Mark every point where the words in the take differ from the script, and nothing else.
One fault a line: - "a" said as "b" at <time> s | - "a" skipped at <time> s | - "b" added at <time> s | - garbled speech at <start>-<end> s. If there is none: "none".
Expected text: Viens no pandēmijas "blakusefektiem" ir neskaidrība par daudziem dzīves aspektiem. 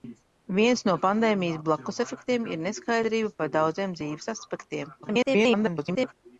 - garbled speech at 5.0-6.1 s